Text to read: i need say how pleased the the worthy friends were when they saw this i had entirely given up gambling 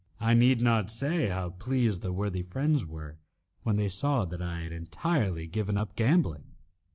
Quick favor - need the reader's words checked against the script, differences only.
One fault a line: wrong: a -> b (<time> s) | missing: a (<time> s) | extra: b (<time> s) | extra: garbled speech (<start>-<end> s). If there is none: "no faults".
extra: not (0.6 s)
missing: the (2.1 s)
wrong: this -> that (4.2 s)